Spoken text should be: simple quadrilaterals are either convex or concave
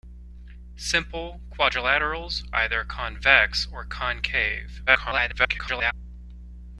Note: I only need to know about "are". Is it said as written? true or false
false